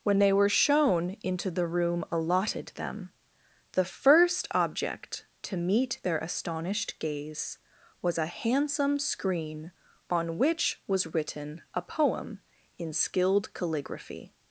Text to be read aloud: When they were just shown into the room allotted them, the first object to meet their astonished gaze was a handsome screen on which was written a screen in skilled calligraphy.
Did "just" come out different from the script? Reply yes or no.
yes